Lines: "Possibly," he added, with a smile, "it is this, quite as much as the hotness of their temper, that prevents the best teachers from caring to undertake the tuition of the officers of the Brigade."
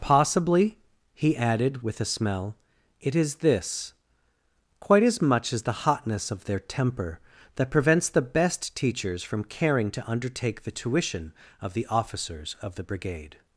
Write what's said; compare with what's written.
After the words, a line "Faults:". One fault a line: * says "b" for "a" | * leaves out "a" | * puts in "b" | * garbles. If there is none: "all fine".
"Possibly," he added, with a smell, "it is this, quite as much as the hotness of their temper, that prevents the best teachers from caring to undertake the tuition of the officers of the Brigade."
Faults:
* says "smell" for "smile"